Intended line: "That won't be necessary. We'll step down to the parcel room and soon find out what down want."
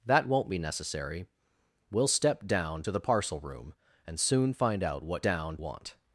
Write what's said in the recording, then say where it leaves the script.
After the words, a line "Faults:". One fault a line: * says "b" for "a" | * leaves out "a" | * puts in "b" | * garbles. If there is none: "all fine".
"That won't be necessary. We'll step down to the parcel room and soon find out what down want."
Faults:
all fine